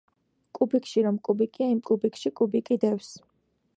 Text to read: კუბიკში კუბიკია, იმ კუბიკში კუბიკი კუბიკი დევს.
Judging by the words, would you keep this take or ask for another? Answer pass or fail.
fail